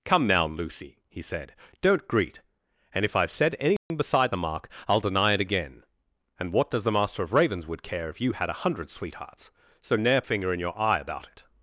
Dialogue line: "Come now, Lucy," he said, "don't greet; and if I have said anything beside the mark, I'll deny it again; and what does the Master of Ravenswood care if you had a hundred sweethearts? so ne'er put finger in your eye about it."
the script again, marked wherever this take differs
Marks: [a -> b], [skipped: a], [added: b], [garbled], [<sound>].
"Come now, Lucy," he said, "don't greet; and if I have said anything [dropout] beside the mark, I'll deny it again; and what does the Master of Ravenswood care if you had a hundred sweethearts? so ne'er [skipped: put] finger in your eye about it."